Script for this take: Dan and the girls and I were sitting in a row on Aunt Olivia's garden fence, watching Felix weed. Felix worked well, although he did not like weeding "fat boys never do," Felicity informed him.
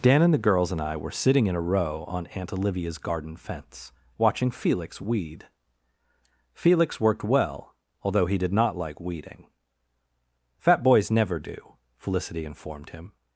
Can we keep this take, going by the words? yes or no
yes